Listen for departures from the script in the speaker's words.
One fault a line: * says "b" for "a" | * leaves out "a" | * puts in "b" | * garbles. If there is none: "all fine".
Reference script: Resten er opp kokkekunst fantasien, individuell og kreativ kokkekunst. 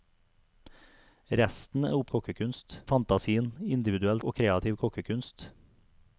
all fine